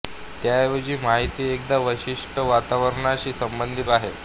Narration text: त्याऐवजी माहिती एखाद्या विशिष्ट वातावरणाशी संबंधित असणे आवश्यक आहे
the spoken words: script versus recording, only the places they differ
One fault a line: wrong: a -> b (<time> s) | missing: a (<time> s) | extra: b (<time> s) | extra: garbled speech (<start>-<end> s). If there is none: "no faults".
missing: असणे आवश्यक (3.9 s)